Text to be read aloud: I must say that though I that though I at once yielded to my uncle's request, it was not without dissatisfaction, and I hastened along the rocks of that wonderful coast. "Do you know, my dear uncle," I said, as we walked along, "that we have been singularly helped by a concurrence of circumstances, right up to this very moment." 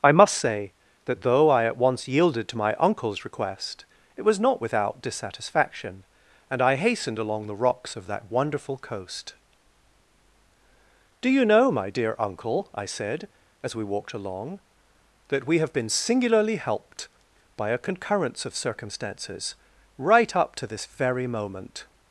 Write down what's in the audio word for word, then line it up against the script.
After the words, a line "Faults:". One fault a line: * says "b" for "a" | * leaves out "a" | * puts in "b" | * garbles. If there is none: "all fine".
I must say that though I at once yielded to my uncle's request, it was not without dissatisfaction, and I hastened along the rocks of that wonderful coast. "Do you know, my dear uncle," I said, as we walked along, "that we have been singularly helped by a concurrence of circumstances, right up to this very moment."
Faults:
* leaves out "that though I"